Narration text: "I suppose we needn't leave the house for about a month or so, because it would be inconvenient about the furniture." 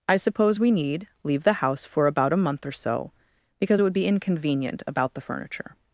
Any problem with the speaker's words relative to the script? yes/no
yes